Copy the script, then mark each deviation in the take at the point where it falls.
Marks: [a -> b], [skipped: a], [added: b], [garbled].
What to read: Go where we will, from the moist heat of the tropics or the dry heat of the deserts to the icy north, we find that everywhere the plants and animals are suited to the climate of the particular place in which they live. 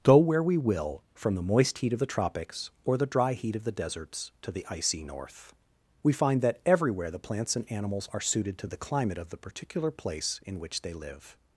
Go where we will, from the moist heat of the tropics or the dry heat of the deserts to the icy north, we find that everywhere the plants and animals are suited to the climate of the particular place in which they live.